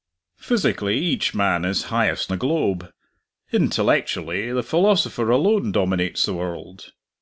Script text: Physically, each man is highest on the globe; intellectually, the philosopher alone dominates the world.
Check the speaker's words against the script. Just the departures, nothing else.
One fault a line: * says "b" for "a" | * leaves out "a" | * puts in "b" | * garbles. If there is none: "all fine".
* leaves out "on"